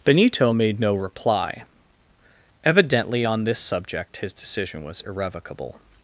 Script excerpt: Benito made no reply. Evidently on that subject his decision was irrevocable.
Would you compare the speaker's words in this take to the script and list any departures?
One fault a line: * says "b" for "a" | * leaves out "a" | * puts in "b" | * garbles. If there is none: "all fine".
* says "this" for "that"